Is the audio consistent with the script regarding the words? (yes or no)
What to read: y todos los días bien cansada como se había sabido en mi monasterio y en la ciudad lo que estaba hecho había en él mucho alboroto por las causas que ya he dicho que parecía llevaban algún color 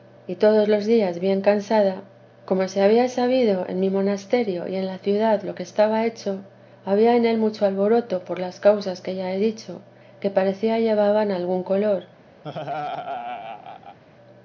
yes